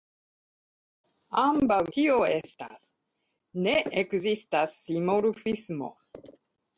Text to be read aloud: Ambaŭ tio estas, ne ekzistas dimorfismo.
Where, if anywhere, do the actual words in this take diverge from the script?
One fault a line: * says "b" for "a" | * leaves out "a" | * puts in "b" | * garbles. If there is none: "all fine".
all fine